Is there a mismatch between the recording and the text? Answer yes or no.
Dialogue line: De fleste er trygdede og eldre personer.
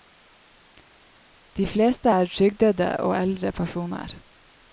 no